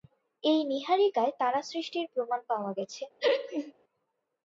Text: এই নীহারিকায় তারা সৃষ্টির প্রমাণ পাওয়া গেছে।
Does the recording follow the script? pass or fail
pass